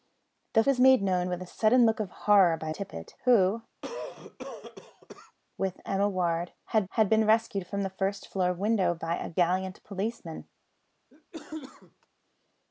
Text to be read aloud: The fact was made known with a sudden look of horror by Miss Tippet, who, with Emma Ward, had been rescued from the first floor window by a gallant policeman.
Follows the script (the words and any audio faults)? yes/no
no